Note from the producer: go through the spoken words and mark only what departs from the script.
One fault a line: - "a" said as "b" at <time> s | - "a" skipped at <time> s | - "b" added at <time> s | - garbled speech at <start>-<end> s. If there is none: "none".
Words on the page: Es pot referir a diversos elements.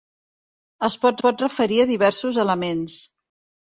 - "pot" added at 1.2 s